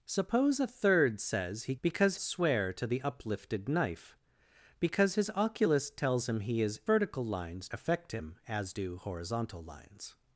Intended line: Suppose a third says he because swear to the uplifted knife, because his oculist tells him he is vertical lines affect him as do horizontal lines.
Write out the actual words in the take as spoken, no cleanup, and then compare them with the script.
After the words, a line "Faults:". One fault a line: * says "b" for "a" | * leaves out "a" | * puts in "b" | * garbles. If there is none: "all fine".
Suppose a third says he because swear to the uplifted knife, because his oculist tells him he is vertical lines affect him as do horizontal lines.
Faults:
all fine